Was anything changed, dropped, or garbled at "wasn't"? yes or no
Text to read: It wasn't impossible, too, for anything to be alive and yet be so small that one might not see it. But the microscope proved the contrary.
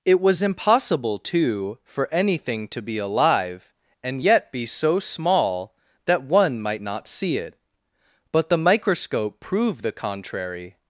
yes